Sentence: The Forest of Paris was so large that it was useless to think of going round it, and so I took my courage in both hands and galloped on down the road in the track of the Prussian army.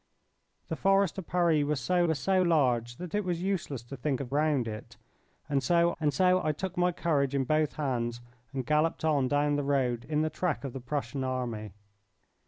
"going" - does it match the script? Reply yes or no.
no